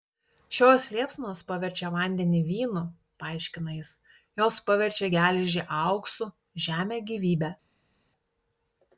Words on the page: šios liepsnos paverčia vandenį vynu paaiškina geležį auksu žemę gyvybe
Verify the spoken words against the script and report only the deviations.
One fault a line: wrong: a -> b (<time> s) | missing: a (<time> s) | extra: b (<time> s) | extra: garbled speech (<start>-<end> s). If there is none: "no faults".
extra: jis jos paverčia (3.8 s)